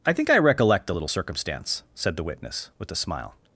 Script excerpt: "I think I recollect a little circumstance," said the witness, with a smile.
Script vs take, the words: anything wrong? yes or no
no